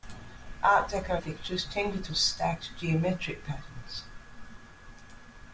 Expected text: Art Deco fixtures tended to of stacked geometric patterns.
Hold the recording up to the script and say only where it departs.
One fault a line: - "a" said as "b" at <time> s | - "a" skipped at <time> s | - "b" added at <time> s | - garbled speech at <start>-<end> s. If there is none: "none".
none